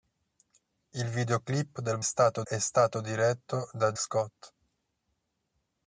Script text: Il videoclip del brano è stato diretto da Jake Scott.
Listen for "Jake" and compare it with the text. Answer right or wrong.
wrong